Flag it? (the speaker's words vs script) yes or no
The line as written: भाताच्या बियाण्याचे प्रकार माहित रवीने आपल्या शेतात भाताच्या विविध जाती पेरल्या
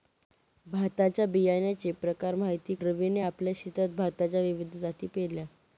no